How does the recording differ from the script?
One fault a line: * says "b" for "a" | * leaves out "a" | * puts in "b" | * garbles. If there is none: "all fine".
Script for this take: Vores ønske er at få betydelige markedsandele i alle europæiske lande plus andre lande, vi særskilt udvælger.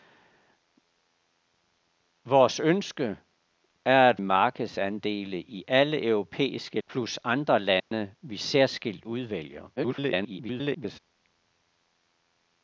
* leaves out "få betydelige"
* leaves out "lande"
* garbles